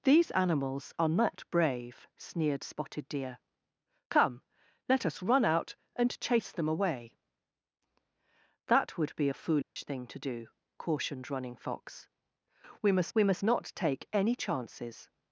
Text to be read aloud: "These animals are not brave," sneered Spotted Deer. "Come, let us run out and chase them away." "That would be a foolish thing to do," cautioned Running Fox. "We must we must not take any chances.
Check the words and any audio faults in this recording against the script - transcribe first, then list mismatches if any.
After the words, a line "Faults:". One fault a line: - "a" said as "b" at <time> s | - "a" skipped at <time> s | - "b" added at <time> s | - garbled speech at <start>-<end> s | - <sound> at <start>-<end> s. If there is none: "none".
"These animals are not brave," sneered Spotted Deer. "Come, let us run out and chase them away." "That would be a foolish thing to do," cautioned Running Fox. "We must we must not take any chances.
Faults:
- dropout at 9.6-9.8 s